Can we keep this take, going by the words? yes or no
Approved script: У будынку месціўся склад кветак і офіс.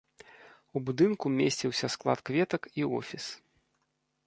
yes